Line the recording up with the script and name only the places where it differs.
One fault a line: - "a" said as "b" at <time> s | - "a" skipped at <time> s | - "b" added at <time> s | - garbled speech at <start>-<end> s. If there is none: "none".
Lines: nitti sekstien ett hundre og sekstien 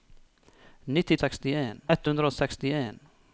none